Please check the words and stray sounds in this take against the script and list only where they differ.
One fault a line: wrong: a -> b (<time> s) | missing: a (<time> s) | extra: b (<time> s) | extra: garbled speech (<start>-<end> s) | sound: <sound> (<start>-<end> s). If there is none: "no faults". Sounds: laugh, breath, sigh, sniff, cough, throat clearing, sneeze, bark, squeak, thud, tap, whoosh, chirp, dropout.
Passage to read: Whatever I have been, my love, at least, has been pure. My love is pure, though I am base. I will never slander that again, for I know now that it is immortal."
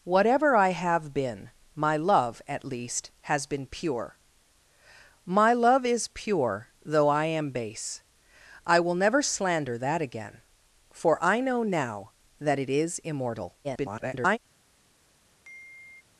extra: garbled speech (13.6-14.4 s)
sound: sigh (15.4-16.0 s)